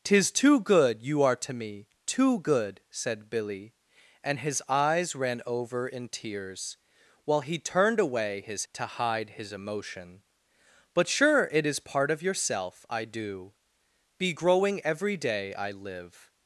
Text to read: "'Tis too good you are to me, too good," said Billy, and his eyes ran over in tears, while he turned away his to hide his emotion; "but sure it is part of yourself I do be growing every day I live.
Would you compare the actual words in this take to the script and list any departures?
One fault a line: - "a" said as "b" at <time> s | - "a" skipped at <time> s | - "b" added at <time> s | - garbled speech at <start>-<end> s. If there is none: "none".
none